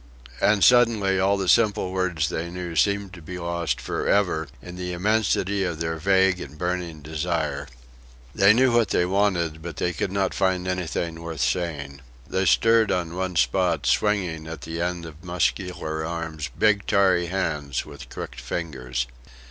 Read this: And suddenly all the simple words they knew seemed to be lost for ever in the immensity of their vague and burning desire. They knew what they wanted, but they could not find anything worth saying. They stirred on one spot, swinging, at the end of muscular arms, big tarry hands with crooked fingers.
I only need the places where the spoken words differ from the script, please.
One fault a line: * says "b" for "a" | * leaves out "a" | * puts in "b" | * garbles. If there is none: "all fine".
all fine